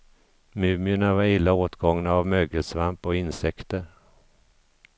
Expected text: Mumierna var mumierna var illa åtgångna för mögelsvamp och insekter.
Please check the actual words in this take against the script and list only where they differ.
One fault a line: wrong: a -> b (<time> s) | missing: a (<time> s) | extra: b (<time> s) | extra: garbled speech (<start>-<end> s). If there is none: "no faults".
missing: mumierna var (1.2 s)
wrong: för -> av (2.1 s)